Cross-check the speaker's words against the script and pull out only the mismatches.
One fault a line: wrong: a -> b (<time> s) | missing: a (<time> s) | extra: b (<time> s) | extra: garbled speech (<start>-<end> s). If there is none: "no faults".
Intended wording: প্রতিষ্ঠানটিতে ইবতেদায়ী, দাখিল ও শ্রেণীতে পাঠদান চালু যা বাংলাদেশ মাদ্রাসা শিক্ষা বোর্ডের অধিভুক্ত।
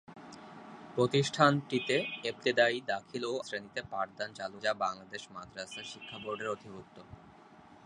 no faults